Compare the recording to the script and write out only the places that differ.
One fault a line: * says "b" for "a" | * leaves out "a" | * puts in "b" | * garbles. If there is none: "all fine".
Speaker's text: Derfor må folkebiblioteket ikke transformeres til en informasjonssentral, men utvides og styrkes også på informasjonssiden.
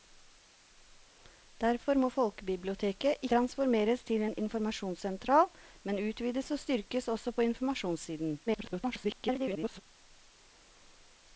* leaves out "ikke"
* garbles